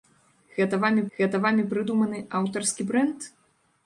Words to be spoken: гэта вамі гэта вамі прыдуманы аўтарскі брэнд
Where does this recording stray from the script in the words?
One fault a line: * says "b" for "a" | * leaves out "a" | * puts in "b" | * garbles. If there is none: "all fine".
all fine